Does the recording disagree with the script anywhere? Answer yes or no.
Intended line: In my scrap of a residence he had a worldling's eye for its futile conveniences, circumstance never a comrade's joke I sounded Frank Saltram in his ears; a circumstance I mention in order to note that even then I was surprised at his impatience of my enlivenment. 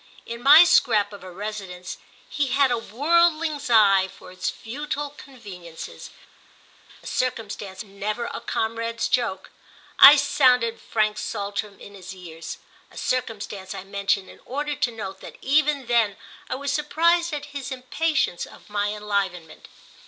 no